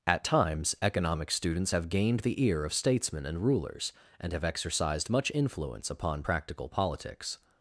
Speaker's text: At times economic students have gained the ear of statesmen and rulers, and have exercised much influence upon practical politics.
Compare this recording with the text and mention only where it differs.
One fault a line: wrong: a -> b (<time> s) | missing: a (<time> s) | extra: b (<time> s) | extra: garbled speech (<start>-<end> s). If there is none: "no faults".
no faults